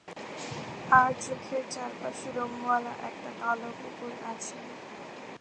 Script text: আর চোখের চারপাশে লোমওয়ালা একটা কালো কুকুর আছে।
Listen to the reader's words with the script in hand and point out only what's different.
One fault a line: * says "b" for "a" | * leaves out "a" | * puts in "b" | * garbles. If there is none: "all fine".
all fine